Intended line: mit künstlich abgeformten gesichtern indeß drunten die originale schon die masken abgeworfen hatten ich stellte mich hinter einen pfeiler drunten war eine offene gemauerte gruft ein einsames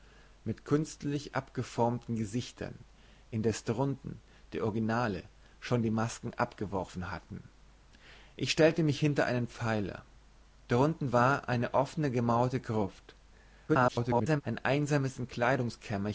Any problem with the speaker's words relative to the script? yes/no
yes